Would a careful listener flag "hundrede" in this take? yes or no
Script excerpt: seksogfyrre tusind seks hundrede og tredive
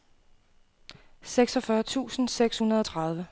no